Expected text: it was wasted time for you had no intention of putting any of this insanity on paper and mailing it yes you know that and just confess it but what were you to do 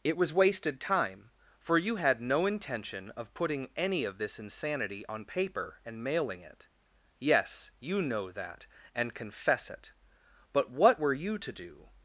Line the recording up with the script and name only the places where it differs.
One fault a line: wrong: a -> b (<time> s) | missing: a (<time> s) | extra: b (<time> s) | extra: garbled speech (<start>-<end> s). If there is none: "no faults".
missing: just (9.1 s)